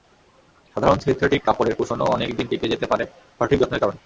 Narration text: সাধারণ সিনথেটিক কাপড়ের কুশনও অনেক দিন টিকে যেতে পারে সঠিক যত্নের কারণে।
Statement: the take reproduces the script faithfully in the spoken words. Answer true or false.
true